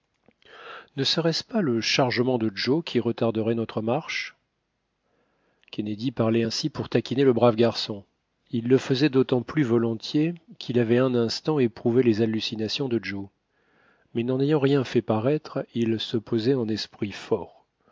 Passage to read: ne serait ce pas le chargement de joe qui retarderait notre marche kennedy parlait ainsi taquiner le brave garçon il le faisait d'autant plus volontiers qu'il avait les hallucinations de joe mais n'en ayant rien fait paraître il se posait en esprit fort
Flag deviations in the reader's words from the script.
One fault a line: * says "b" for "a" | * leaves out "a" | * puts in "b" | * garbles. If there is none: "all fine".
* puts in "pour"
* puts in "un instant éprouvé"